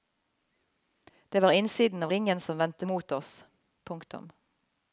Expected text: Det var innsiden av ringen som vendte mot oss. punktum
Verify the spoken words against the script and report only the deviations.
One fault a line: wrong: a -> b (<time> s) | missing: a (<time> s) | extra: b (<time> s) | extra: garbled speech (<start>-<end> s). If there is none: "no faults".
no faults